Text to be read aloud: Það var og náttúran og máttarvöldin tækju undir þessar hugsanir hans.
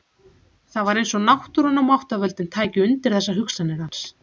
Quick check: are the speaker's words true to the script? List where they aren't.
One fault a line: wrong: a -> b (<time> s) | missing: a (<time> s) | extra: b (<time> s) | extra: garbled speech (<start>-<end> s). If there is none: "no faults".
extra: eins (1.0 s)